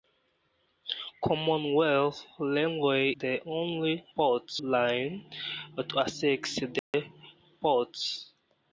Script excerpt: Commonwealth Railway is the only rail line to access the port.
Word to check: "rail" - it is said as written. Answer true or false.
false